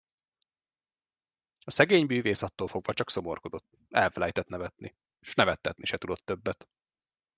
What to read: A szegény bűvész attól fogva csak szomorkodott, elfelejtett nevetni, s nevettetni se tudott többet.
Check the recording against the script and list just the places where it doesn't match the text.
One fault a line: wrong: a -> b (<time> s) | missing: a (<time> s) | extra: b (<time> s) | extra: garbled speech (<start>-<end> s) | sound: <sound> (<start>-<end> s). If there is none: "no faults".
no faults